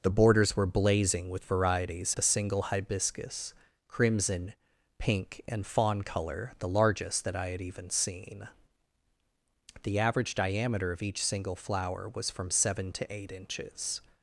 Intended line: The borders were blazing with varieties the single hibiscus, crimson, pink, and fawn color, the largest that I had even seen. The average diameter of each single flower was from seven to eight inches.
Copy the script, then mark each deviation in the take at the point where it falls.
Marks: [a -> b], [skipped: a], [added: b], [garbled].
The borders were blazing with varieties the single hibiscus, crimson, pink, and fawn color, the largest that I had even seen. The average diameter of each single flower was from seven to eight inches.